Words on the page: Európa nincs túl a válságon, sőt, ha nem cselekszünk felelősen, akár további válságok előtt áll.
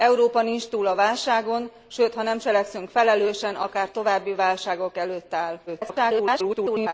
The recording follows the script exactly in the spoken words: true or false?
false